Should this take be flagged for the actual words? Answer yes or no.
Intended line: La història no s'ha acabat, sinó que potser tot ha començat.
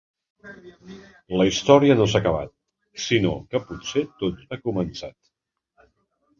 no